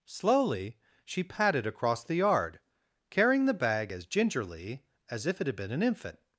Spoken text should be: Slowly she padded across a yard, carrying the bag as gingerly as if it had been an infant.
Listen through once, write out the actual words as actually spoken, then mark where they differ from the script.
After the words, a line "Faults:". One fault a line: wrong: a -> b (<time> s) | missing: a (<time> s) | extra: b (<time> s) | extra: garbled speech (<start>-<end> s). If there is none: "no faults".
Slowly she padded across the yard, carrying the bag as gingerly as if it had been an infant.
Faults:
wrong: a -> the (2.0 s)